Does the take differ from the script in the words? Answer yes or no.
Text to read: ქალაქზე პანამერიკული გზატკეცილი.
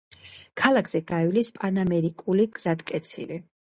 yes